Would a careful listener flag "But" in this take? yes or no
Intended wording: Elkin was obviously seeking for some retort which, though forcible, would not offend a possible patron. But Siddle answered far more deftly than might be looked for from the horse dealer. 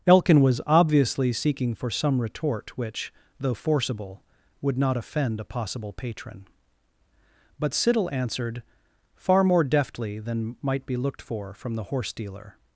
no